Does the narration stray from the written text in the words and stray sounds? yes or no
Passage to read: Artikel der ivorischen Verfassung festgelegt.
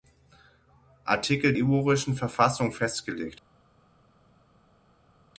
yes